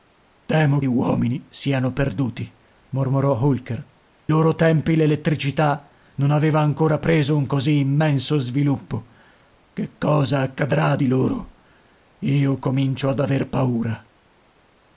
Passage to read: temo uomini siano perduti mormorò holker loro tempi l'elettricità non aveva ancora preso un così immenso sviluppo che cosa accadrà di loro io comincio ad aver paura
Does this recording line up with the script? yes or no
yes